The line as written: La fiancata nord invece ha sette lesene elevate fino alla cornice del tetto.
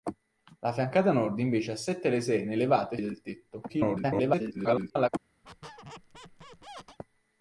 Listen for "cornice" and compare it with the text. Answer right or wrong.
wrong